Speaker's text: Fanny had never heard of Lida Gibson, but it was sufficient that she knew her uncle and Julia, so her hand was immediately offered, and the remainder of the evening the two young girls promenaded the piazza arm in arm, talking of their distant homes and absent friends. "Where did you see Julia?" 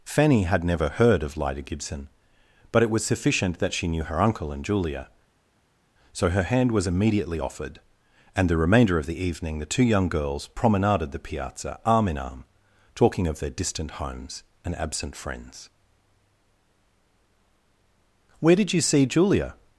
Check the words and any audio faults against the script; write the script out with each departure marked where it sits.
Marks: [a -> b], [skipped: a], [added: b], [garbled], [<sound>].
Fanny had never heard of Lida Gibson, but it was sufficient that she knew her uncle and Julia, so her hand was immediately offered, and the remainder of the evening the two young girls promenaded the piazza arm in arm, talking of their distant homes and absent friends. "Where did you see Julia?"